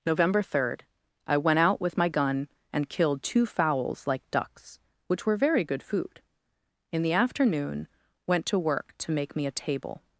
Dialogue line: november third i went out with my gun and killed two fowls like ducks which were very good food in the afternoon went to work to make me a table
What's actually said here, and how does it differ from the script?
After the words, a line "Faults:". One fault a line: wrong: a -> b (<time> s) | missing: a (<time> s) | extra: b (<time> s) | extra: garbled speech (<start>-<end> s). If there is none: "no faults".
november third i went out with my gun and killed two fowls like ducks which were very good food in the afternoon went to work to make me a table
Faults:
no faults